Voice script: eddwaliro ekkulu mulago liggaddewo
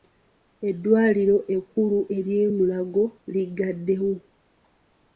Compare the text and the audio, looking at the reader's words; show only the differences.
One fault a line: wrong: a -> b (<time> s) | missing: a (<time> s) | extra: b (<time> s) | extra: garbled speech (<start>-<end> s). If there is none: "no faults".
extra: ery'e (2.2 s)